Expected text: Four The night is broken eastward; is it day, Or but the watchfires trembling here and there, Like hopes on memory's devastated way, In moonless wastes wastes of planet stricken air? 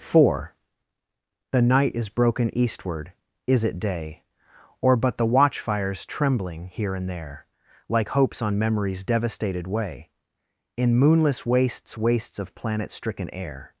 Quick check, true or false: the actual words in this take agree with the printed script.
true